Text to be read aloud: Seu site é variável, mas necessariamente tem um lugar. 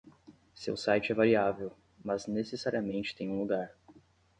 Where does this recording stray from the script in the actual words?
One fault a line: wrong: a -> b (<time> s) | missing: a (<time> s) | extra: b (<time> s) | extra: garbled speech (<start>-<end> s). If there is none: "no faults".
no faults